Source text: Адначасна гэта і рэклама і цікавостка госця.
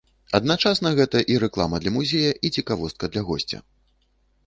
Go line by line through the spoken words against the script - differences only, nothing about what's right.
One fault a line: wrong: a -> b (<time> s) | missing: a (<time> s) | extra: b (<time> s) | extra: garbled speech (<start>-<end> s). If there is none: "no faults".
extra: для музея (1.8 s)
extra: для (3.2 s)